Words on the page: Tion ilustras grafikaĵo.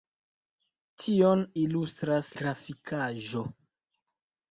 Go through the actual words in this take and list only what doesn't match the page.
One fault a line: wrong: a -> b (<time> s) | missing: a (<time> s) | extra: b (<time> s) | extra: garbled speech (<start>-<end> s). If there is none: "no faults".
no faults